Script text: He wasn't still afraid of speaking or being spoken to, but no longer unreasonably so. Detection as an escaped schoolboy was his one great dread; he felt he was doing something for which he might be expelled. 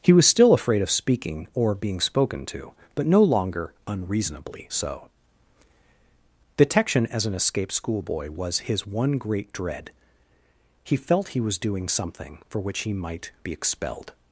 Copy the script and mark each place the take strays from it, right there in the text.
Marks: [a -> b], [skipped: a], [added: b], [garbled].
He [wasn't -> was] still afraid of speaking or being spoken to, but no longer unreasonably so. Detection as an escaped schoolboy was his one great dread; he felt he was doing something for which he might be expelled.